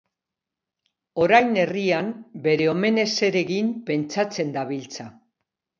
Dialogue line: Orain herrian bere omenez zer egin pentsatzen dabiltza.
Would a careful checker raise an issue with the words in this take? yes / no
no